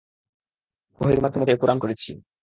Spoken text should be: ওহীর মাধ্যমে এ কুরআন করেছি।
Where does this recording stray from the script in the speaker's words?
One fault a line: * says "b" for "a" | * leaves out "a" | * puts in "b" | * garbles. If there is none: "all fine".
all fine